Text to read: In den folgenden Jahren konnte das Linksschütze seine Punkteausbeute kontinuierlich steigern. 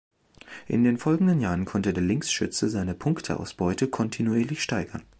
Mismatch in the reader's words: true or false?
true